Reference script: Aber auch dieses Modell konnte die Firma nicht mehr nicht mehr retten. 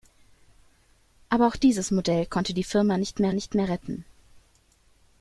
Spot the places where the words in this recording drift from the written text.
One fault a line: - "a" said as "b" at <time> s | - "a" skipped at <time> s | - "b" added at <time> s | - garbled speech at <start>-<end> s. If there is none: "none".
none